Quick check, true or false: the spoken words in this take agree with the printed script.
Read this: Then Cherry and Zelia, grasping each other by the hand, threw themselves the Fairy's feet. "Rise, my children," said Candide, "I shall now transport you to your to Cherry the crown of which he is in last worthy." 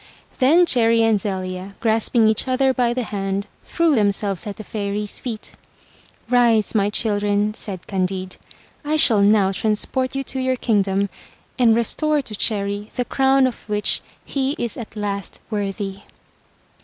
false